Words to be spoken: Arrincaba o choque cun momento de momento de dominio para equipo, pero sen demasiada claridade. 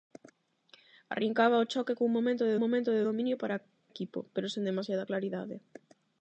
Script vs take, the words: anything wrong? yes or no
no